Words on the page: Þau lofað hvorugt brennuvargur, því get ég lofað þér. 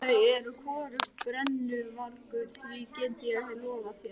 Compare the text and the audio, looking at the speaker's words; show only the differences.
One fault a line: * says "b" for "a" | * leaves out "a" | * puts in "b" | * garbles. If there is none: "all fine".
* says "eru" for "lofað"